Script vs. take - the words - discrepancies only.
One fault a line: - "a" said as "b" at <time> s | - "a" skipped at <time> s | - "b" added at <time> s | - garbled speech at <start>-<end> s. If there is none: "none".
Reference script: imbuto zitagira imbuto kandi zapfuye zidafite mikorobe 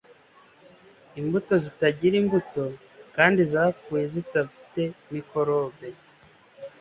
none